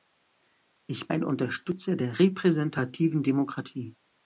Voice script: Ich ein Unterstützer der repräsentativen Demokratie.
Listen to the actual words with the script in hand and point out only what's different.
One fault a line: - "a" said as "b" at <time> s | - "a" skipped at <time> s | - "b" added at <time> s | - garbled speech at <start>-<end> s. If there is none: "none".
none